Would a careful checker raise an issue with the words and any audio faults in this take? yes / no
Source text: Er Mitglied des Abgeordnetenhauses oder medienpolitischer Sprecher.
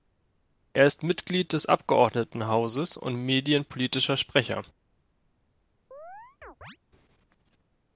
yes